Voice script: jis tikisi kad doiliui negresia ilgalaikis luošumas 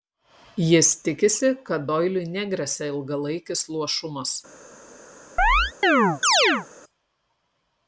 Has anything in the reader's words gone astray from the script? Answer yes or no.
no